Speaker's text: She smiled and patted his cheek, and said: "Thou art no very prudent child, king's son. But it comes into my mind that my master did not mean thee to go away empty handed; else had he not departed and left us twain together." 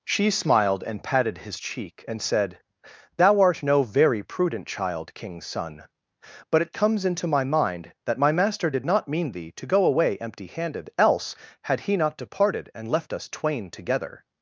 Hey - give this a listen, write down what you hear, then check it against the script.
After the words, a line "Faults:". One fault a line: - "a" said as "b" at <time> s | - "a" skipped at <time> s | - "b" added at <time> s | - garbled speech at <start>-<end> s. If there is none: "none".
She smiled and patted his cheek, and said: "Thou art no very prudent child, king's son. But it comes into my mind that my master did not mean thee to go away empty handed; else had he not departed and left us twain together."
Faults:
none